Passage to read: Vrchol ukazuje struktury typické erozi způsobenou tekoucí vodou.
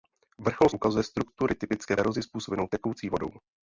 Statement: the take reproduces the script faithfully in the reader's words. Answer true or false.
true